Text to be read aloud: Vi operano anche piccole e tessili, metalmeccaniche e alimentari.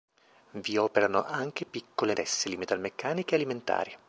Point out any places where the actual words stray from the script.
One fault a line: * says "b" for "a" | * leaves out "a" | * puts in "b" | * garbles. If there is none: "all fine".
all fine